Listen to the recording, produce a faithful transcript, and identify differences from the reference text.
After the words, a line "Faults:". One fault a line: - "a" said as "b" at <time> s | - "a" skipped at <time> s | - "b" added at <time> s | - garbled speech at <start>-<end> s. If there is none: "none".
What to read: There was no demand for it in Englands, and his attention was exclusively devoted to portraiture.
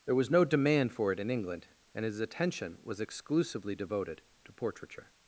There was no demand for it in England, and his attention was exclusively devoted to portraiture.
Faults:
- "Englands" said as "England" at 1.3 s